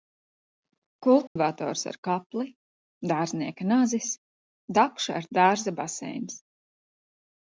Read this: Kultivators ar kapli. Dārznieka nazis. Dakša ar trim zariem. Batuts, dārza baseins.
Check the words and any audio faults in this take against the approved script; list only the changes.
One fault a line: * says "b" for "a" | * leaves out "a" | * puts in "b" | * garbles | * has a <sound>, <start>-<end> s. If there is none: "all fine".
* has a dropout, 1.3-1.4 s
* leaves out "trim zariem Batuts"